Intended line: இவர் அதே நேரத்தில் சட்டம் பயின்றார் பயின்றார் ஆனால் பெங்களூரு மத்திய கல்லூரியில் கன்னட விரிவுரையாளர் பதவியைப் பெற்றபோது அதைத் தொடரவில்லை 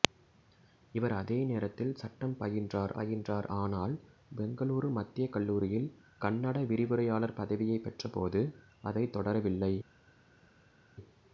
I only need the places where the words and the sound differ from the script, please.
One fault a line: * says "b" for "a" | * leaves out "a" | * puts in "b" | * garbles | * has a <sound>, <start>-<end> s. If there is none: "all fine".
all fine